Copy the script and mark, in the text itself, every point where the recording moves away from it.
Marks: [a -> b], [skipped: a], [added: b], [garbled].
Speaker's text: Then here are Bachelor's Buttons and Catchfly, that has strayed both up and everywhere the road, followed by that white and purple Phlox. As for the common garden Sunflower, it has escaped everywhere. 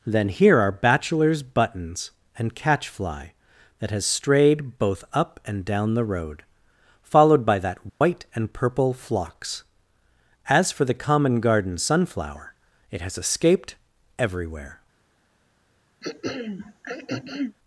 Then here are Bachelor's Buttons and Catchfly, that has strayed both up and [everywhere -> down] the road, followed by that white and purple Phlox. As for the common garden Sunflower, it has escaped everywhere.